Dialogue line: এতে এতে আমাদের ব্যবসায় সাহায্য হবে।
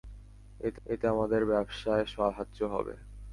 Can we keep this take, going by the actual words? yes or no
yes